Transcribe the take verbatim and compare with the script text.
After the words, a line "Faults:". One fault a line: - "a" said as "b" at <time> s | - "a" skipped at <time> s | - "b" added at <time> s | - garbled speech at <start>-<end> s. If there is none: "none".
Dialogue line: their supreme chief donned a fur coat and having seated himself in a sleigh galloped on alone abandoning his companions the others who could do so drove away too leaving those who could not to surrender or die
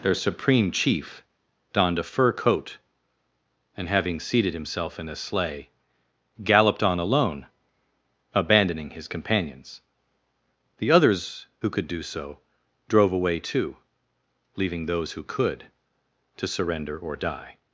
their supreme chief donned a fur coat and having seated himself in a sleigh galloped on alone abandoning his companions the others who could do so drove away too leaving those who could to surrender or die
Faults:
- "not" skipped at 15.7 s